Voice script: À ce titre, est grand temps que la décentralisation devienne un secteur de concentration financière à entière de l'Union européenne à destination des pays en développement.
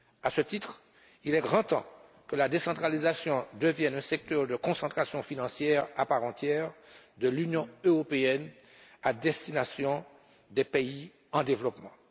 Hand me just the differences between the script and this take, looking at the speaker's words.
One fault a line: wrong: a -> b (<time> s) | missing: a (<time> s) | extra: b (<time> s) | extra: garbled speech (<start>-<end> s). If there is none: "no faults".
extra: il (1.2 s)
extra: part (6.0 s)